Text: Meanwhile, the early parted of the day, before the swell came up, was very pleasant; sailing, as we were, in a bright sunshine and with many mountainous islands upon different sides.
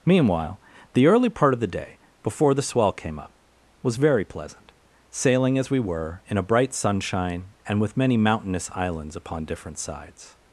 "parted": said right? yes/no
no